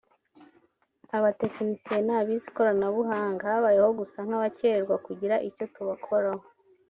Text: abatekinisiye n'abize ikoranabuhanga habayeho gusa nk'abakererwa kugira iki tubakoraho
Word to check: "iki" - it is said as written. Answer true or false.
false